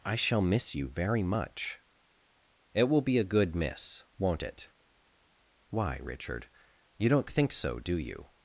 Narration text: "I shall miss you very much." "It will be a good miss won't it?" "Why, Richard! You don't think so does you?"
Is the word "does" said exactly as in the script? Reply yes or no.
no